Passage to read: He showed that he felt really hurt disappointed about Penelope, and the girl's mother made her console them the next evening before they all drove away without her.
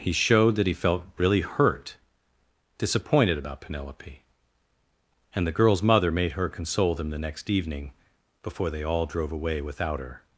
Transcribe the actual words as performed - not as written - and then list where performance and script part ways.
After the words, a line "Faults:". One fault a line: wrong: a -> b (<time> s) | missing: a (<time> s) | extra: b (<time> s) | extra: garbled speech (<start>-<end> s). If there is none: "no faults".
He showed that he felt really hurt disappointed about Penelope, and the girl's mother made her console them the next evening before they all drove away without her.
Faults:
no faults